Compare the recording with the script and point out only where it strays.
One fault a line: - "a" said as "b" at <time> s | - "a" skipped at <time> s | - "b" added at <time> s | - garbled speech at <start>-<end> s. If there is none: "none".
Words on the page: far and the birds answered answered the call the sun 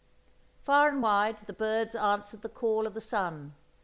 - "wide" added at 1.0 s
- "answered" skipped at 2.4 s
- "of" added at 2.8 s